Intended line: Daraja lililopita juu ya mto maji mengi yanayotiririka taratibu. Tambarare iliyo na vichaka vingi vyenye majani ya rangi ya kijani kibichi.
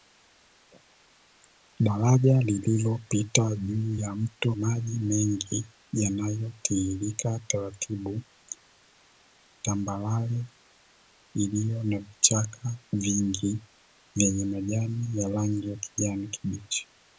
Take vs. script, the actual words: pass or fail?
pass